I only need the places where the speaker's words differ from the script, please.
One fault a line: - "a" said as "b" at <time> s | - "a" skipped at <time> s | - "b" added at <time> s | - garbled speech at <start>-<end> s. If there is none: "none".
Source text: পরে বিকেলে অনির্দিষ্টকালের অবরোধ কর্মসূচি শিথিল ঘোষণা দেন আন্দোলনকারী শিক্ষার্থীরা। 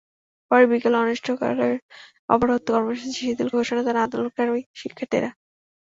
none